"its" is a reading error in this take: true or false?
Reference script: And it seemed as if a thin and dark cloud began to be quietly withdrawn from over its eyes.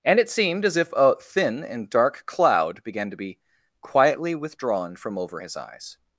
true